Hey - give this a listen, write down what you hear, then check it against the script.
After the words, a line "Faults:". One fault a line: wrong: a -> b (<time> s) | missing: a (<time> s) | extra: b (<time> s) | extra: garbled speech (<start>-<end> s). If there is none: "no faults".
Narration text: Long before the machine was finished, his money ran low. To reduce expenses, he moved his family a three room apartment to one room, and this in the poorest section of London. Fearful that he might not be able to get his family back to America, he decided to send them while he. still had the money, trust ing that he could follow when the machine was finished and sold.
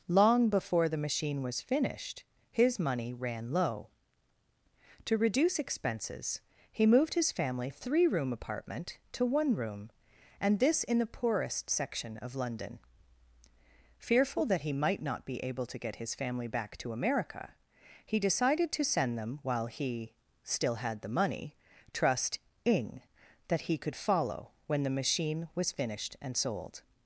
Long before the machine was finished, his money ran low. To reduce expenses, he moved his family a three room apartment to one room, and this in the poorest section of London. Fearful that he might not be able to get his family back to America, he decided to send them while he. still had the money, trust ing that he could follow when the machine was finished and sold.
Faults:
no faults